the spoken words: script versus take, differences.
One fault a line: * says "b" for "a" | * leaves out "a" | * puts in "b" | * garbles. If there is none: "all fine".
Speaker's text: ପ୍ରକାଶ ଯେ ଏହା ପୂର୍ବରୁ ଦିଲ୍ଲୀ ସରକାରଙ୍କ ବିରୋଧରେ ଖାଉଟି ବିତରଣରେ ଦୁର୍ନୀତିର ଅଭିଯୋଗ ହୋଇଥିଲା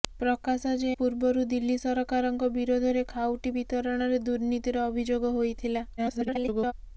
* leaves out "ଏହା"
* garbles